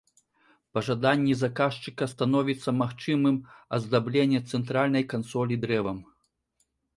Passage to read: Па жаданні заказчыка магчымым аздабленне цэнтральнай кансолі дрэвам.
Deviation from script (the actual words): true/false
true